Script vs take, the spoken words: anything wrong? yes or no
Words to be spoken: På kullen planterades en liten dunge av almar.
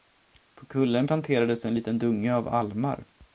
no